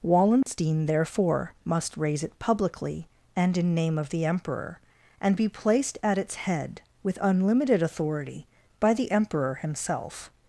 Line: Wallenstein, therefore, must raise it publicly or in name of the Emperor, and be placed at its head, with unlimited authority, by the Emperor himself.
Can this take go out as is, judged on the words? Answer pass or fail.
fail